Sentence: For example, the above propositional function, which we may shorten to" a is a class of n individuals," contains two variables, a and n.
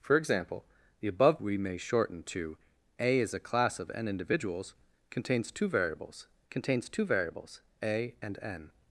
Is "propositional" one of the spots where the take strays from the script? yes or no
yes